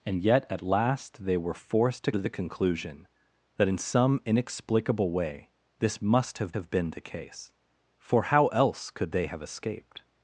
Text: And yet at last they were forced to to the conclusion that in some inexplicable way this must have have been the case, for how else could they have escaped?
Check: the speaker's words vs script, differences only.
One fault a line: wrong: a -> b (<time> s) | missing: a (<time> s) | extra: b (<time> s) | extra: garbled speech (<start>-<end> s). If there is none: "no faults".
no faults